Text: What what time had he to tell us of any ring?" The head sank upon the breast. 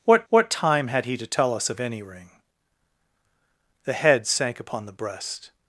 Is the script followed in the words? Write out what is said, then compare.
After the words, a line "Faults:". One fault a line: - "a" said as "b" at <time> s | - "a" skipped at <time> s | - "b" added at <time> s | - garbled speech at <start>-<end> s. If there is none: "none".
What what time had he to tell us of any ring?" The head sank upon the breast.
Faults:
none